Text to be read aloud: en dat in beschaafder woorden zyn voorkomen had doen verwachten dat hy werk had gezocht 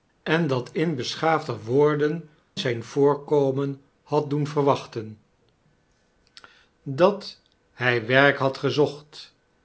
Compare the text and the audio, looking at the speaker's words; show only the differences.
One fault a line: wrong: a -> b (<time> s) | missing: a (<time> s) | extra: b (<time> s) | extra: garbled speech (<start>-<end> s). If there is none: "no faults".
no faults